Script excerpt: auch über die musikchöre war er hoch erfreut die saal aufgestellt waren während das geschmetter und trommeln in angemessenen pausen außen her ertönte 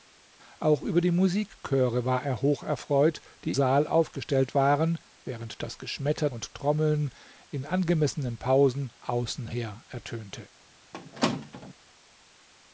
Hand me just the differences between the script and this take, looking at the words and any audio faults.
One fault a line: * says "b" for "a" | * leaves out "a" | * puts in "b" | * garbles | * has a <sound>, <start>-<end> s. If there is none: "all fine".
* has a squeak, 10.9-11.7 s